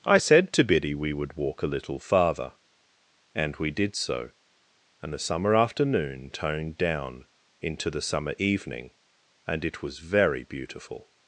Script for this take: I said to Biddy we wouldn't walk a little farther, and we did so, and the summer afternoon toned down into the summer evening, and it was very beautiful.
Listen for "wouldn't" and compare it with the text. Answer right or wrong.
wrong